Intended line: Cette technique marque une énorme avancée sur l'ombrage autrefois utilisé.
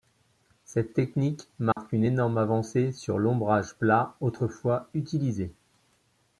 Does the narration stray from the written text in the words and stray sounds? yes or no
yes